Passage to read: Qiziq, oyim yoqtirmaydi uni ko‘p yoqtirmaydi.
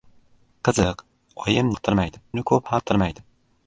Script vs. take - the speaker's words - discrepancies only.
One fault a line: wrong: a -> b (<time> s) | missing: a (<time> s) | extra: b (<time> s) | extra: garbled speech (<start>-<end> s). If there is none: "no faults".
no faults